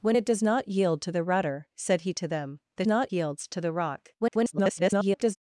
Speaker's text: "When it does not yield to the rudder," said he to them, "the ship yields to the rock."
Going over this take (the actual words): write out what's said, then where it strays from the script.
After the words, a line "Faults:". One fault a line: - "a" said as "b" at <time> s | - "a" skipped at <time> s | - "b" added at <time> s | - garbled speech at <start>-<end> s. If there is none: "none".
"When it does not yield to the rudder," said he to them, "the not yields to the rock." [garbled]
Faults:
- "ship" said as "not" at 2.8 s
- garbled speech at 4.2-5.4 s